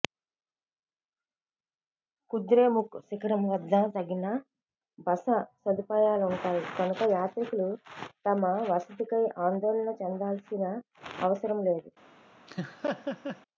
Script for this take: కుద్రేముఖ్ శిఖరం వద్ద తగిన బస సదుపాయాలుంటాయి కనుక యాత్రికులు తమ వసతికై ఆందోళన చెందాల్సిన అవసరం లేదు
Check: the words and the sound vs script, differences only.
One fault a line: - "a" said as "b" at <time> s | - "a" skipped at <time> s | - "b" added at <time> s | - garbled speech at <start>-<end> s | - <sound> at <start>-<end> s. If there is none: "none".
- laugh at 12.5-13.4 s